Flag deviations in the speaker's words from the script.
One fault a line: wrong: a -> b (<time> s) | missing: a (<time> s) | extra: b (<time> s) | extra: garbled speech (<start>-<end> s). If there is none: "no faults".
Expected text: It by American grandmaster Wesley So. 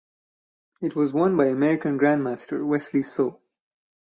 extra: was won (0.9 s)